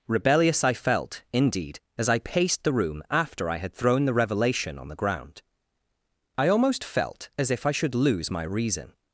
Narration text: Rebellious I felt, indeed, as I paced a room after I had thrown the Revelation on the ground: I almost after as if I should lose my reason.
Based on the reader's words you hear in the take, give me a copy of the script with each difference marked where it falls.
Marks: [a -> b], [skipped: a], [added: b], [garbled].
Rebellious I felt, indeed, as I paced [a -> the] room after I had thrown the Revelation on the ground: I almost [after -> felt] as if I should lose my reason.